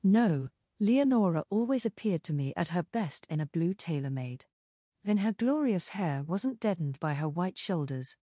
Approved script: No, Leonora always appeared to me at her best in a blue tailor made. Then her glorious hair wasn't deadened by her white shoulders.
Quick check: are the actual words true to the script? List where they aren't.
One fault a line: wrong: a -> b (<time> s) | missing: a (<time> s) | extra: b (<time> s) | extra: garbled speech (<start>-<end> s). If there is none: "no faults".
no faults